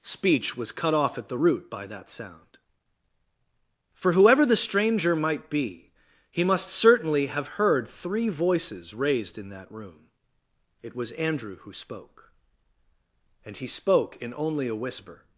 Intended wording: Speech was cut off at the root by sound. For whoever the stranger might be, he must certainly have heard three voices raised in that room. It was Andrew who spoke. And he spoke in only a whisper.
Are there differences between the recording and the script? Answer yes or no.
yes